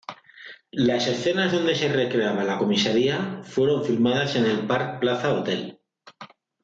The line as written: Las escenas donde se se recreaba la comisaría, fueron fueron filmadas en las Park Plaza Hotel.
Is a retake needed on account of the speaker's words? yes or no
yes